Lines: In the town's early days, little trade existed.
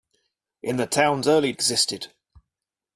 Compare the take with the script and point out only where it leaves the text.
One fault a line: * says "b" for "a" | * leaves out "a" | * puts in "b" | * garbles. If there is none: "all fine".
* leaves out "days little trade"